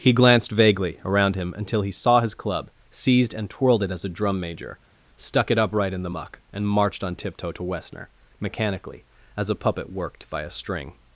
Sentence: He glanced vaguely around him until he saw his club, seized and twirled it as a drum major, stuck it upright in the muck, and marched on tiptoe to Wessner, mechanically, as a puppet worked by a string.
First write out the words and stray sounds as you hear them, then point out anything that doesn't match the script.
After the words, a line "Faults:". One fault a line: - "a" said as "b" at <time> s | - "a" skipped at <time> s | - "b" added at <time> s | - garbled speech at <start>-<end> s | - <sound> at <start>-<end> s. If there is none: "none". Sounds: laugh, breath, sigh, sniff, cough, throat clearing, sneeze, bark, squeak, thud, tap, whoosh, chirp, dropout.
He glanced vaguely around him until he saw his club, seized and twirled it as a drum major, stuck it upright in the muck, and marched on tiptoe to Wessner, mechanically, as a puppet worked by a string.
Faults:
none